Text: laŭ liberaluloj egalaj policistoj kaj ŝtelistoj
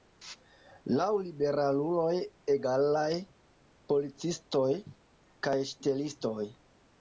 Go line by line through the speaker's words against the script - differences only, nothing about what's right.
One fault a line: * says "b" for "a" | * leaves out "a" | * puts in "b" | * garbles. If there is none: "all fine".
all fine